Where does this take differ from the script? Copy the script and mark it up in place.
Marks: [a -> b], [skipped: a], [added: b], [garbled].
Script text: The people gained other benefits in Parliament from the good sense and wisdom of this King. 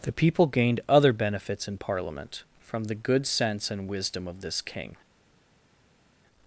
The people gained other benefits in Parliament from the good sense and wisdom of this King.